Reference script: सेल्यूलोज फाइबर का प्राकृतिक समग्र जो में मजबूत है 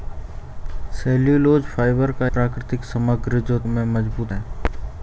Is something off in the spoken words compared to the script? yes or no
no